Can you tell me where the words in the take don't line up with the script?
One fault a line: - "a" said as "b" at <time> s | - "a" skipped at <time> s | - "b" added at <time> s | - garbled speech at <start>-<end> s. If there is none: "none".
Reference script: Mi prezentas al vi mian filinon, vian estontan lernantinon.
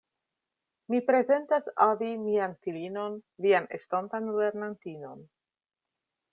none